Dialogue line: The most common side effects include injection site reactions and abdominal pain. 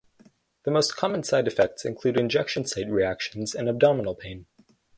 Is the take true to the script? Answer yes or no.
yes